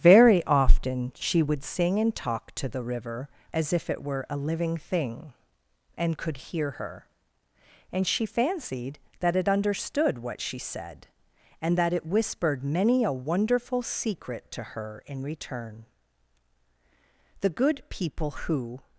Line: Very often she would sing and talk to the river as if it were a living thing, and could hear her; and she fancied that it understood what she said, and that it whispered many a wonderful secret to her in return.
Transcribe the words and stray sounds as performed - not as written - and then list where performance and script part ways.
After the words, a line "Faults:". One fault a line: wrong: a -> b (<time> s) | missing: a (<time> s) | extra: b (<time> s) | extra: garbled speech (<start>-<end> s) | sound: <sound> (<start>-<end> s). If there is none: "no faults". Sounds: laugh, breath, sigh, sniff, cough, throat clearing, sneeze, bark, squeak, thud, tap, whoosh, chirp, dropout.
Very often she would sing and talk to the river as if it were a living thing, and could hear her; and she fancied that it understood what she said, and that it whispered many a wonderful secret to her in return. The good people who
Faults:
extra: The good people who (17.4 s)